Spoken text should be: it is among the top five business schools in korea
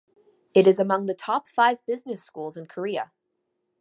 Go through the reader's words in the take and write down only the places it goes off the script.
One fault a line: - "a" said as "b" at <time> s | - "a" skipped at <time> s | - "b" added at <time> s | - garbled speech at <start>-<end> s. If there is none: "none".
none